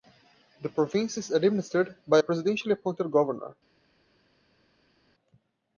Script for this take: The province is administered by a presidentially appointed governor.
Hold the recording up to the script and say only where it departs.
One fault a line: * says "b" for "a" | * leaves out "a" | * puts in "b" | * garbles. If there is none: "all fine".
all fine